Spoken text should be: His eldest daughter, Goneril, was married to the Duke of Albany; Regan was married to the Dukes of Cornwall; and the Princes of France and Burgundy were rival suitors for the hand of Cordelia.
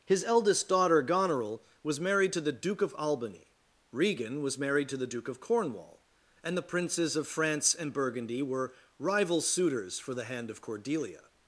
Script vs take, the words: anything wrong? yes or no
yes